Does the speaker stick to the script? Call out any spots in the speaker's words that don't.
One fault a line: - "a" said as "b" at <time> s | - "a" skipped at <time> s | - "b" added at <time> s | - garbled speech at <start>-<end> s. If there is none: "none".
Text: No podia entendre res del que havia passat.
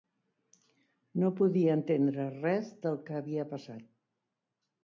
none